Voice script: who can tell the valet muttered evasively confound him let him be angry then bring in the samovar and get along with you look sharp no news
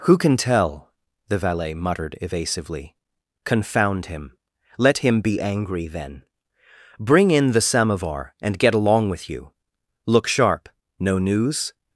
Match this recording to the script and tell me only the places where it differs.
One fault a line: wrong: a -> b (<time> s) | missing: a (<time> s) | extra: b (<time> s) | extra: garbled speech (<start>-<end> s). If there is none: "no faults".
no faults